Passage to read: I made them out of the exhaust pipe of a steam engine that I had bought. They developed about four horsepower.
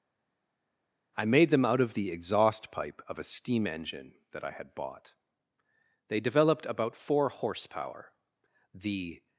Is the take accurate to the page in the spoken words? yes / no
no